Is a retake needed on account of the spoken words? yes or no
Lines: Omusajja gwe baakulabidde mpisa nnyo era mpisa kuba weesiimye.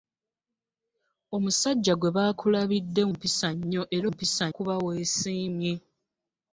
no